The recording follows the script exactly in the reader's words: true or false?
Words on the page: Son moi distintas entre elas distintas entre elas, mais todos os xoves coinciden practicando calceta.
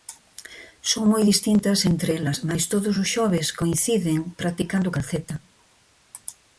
false